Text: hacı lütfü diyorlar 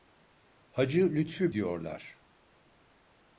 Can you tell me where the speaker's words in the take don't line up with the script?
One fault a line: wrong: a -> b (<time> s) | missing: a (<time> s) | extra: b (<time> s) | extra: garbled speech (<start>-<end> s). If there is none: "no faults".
no faults